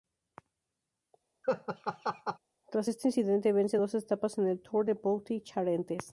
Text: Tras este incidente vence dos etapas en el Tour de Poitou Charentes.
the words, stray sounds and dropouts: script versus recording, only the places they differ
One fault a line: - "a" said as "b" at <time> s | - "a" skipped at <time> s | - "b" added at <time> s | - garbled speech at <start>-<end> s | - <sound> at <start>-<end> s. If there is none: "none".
- laugh at 1.4-2.4 s